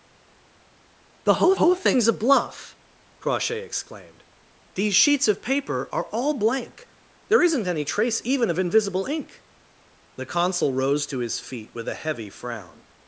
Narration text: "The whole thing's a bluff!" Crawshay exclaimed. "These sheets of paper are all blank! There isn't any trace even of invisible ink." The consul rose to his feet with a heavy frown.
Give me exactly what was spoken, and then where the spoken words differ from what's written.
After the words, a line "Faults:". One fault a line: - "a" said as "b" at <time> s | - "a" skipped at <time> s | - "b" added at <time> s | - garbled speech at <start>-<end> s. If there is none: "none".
"The whole whole thing's a bluff!" Crawshay exclaimed. "These sheets of paper are all blank! There isn't any trace even of invisible ink." The consul rose to his feet with a heavy frown.
Faults:
- "whole" added at 1.5 s